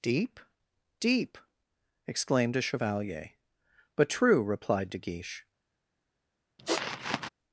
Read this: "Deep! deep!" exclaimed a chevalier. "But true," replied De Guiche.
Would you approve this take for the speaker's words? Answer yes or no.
yes